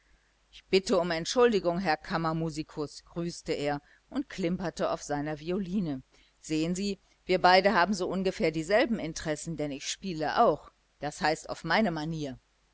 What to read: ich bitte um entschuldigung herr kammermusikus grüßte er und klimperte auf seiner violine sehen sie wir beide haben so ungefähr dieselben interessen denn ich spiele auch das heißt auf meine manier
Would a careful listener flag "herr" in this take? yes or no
no